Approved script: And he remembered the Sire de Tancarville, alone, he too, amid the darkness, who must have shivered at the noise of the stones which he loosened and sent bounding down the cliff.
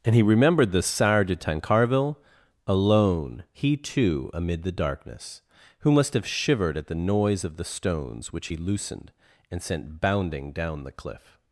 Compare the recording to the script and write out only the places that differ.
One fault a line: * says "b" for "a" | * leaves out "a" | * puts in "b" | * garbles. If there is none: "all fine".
all fine